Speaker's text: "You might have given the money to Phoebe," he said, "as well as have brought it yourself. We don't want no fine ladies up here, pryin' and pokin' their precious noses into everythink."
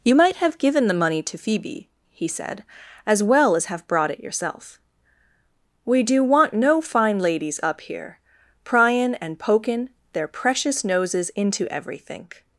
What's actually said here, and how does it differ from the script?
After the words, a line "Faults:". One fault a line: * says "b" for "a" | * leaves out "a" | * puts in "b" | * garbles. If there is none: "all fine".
"You might have given the money to Phoebe," he said, "as well as have brought it yourself. We do want no fine ladies up here, pryin' and pokin' their precious noses into everythink."
Faults:
* says "do" for "don't"